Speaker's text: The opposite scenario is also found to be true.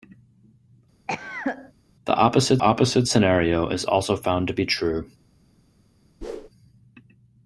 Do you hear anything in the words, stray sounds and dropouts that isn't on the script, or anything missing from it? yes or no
yes